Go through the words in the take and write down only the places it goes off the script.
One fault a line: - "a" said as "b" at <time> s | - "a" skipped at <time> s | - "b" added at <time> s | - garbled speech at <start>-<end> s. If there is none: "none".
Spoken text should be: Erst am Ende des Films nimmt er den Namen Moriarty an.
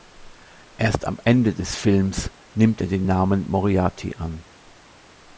none